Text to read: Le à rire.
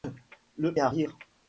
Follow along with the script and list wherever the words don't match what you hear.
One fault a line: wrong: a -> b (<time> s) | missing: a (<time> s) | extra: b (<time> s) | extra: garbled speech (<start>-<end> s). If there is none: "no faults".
no faults